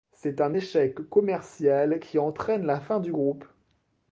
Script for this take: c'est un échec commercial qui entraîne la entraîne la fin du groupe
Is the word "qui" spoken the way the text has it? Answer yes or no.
yes